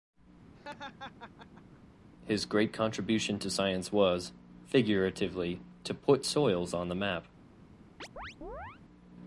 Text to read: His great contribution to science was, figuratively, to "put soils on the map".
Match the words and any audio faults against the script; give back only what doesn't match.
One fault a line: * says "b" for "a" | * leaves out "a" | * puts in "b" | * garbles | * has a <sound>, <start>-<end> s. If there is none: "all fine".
* has a laugh, 0.5-1.8 s
* has a chirp, 8.0-8.8 s